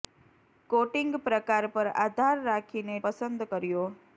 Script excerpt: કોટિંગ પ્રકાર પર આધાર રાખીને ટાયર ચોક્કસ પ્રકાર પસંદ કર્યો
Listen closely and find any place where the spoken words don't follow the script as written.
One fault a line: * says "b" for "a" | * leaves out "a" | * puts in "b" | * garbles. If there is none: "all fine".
* leaves out "ટાયર ચોક્કસ પ્રકાર"